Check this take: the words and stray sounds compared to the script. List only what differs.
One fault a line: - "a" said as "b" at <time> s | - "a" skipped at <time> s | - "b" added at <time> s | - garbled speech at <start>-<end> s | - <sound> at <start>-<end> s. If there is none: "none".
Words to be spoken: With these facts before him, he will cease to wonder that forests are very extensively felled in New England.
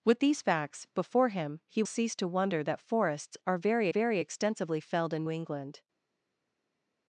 - "will" skipped at 1.8 s
- "very" added at 3.9 s
- "New" skipped at 5.2 s